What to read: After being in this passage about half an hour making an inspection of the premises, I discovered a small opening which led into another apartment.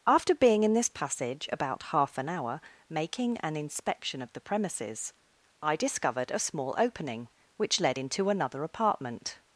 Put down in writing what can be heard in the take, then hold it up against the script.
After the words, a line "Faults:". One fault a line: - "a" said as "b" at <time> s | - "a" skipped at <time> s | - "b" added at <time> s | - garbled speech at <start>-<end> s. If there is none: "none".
After being in this passage about half an hour making an inspection of the premises, I discovered a small opening which led into another apartment.
Faults:
none